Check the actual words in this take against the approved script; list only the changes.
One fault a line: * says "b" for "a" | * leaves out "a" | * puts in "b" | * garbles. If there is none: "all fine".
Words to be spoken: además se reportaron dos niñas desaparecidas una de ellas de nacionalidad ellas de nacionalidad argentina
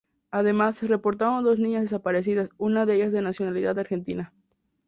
* leaves out "ellas de nacionalidad"